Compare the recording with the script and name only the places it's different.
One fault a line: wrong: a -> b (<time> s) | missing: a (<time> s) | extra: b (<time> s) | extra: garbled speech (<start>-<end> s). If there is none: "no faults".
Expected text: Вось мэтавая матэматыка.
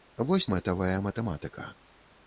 no faults